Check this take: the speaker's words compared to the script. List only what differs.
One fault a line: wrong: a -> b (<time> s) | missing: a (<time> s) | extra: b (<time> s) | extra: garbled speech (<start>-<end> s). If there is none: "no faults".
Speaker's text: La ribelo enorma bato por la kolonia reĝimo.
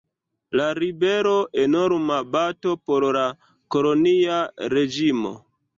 no faults